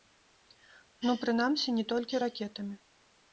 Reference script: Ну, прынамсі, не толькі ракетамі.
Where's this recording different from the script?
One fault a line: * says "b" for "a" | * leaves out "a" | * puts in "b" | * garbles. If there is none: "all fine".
all fine